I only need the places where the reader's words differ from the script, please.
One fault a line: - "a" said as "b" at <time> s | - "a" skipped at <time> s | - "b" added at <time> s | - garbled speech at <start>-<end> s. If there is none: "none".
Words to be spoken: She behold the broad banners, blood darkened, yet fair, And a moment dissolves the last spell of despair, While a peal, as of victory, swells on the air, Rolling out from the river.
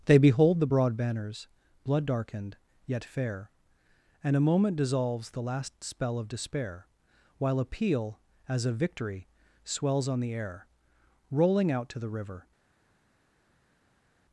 - "She" said as "They" at 0.1 s
- "from" said as "to" at 11.9 s